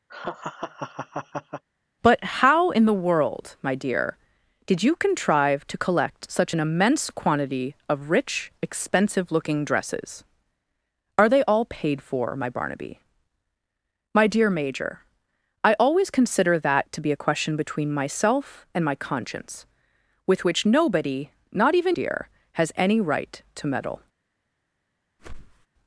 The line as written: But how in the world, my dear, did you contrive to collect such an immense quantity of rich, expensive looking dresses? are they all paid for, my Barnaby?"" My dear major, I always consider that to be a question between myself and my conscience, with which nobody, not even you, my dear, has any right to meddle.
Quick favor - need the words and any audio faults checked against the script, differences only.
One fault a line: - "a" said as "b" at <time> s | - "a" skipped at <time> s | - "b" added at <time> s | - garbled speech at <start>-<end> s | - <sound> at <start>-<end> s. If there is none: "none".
- laugh at 0.1-1.6 s
- "you my" skipped at 22.0 s
- whoosh at 25.2-25.7 s